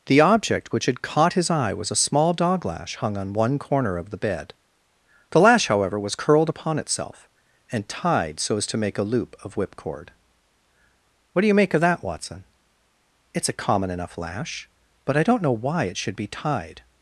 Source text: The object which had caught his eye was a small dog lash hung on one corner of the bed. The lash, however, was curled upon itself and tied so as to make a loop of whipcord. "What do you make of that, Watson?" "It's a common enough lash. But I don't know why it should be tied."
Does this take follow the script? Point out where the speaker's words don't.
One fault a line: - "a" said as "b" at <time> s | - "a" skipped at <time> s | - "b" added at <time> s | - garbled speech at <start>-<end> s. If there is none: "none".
none